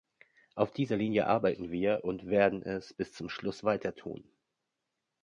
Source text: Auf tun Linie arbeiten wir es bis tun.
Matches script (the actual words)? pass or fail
fail